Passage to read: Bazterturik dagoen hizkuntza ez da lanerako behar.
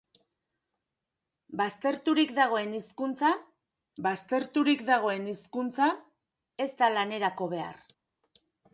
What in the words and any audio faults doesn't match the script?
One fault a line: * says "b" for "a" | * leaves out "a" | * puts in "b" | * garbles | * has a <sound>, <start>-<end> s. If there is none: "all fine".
* puts in "bazterturik dagoen hizkuntza"